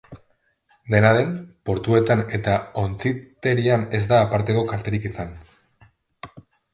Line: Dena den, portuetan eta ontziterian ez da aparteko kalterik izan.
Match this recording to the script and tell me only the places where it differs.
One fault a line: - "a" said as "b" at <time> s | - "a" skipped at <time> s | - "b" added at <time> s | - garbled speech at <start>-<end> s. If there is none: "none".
none